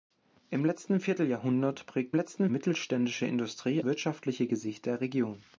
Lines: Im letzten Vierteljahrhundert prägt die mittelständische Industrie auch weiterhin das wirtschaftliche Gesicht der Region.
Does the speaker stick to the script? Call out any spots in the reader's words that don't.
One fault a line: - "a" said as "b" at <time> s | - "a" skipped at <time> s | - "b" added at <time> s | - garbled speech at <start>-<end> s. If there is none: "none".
- "die" said as "letzten" at 2.1 s
- "auch weiterhin das" skipped at 3.8 s